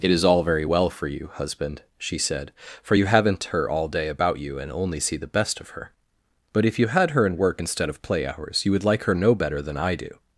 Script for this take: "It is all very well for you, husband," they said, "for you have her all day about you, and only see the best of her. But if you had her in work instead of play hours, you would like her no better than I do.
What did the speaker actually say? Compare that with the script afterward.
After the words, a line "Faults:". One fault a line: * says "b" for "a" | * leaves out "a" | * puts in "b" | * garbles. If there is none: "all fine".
"It is all very well for you, husband," she said, "for you haven't her all day about you, and only see the best of her. But if you had her in work instead of play hours, you would like her no better than I do.
Faults:
* says "she" for "they"
* says "haven't" for "have"